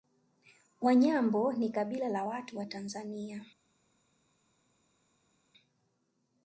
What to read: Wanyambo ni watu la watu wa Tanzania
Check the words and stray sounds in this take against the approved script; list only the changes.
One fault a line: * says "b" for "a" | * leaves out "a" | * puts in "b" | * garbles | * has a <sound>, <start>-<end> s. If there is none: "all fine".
* says "kabila" for "watu"